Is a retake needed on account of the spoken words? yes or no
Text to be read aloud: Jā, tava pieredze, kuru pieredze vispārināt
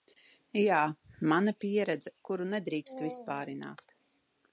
yes